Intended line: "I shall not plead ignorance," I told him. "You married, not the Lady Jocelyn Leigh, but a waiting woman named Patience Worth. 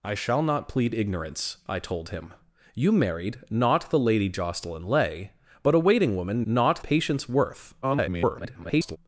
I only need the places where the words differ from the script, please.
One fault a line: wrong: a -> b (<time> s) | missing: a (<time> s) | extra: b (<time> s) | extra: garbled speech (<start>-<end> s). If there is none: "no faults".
wrong: named -> not (6.4 s)
extra: garbled speech (7.8-9.0 s)